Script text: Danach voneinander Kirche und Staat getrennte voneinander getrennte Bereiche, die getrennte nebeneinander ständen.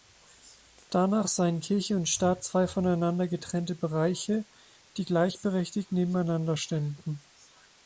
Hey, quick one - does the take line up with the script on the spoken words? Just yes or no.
no